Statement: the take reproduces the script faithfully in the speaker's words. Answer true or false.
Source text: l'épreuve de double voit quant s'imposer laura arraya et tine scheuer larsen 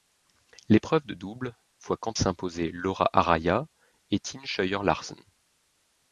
true